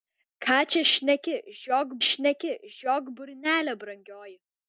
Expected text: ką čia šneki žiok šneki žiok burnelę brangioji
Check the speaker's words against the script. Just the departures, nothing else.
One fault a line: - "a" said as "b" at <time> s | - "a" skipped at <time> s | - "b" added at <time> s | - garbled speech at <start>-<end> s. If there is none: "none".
none